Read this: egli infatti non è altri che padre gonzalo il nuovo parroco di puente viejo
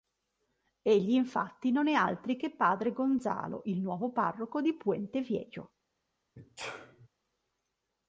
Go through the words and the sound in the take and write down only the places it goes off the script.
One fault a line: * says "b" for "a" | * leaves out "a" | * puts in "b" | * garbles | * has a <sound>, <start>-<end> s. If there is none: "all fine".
* has a sneeze, 6.4-7.1 s